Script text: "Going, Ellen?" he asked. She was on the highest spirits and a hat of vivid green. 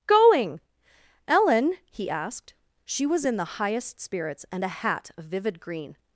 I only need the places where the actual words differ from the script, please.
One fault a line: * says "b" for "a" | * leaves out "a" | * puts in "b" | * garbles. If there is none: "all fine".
* says "in" for "on"